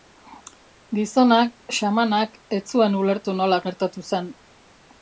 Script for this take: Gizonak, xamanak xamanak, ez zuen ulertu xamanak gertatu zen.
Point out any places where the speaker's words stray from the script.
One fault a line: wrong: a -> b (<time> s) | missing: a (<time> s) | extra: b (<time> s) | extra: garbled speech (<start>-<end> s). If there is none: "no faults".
missing: xamanak (2.4 s)
wrong: xamanak -> nola (3.4 s)